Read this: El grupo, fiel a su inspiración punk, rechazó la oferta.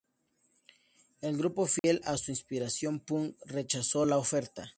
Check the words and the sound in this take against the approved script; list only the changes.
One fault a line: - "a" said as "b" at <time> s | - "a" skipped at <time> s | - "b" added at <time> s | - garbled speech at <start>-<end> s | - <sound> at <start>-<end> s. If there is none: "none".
- dropout at 1.8-1.8 s